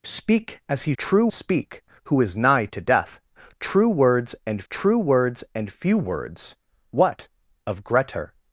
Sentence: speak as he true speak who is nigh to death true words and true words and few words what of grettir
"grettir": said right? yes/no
yes